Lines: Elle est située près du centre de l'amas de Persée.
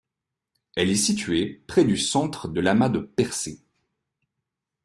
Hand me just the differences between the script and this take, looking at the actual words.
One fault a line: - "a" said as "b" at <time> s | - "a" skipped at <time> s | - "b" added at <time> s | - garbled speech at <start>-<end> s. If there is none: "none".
none